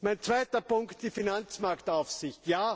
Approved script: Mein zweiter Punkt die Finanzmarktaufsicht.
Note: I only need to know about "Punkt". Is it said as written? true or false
true